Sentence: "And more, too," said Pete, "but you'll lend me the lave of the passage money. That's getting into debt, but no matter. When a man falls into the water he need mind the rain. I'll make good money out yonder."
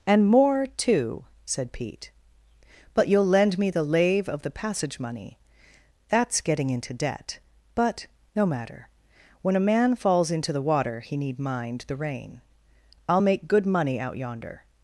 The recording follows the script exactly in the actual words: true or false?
true